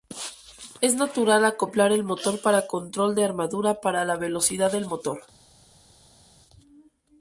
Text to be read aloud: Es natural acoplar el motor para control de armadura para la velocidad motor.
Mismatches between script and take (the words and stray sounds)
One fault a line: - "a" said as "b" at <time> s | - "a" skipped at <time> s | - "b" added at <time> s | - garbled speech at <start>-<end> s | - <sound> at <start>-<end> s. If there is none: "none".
- "del" added at 4.7 s